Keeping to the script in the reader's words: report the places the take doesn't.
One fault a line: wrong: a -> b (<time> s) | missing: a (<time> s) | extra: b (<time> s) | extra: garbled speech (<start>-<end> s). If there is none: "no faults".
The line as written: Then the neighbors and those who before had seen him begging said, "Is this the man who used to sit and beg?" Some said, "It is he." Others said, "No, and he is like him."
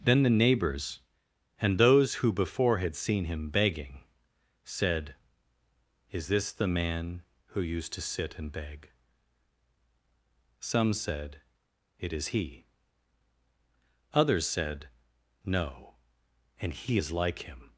no faults